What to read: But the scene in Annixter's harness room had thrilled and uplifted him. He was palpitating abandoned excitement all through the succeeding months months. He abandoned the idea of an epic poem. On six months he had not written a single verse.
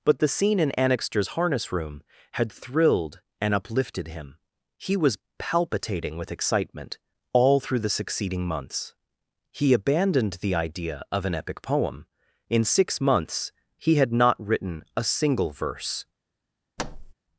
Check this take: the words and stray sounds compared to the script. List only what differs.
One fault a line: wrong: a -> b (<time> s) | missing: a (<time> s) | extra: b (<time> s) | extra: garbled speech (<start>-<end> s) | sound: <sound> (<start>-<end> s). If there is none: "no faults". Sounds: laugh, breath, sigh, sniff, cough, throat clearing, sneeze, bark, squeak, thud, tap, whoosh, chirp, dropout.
wrong: abandoned -> with (6.2 s)
missing: months (8.9 s)
wrong: On -> In (12.5 s)
sound: thud (16.8-17.1 s)